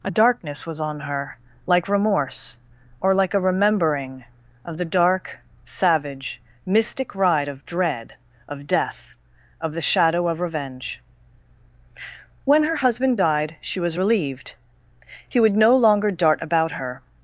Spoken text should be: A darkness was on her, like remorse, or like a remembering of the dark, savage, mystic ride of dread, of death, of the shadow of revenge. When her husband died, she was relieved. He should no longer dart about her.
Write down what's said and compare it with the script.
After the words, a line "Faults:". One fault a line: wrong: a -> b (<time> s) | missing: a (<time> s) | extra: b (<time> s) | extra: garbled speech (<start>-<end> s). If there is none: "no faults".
A darkness was on her, like remorse, or like a remembering of the dark, savage, mystic ride of dread, of death, of the shadow of revenge. When her husband died, she was relieved. He would no longer dart about her.
Faults:
wrong: should -> would (15.4 s)